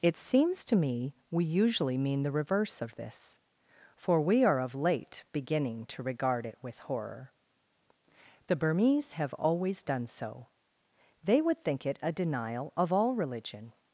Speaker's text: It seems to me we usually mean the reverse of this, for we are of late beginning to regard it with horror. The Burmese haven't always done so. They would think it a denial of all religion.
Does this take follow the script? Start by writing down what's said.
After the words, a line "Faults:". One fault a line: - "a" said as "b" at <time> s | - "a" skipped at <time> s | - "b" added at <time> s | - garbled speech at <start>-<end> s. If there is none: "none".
It seems to me we usually mean the reverse of this, for we are of late beginning to regard it with horror. The Burmese have always done so. They would think it a denial of all religion.
Faults:
- "haven't" said as "have" at 9.1 s